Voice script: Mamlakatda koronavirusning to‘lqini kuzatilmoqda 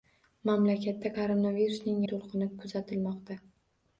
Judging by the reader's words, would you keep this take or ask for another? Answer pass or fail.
pass